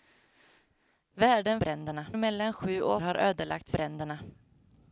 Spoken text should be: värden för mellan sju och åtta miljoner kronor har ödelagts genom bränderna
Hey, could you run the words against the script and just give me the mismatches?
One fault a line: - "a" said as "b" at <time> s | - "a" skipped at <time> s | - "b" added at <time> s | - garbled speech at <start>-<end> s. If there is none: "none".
- "för" said as "bränderna" at 1.6 s
- "åtta miljoner kronor" skipped at 3.0 s
- "genom" skipped at 3.7 s